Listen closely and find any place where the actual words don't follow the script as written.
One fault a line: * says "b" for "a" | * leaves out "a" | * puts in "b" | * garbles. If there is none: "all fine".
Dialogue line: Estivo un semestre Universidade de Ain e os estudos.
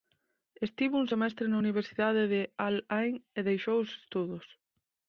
* puts in "na"
* puts in "Al"
* puts in "deixou"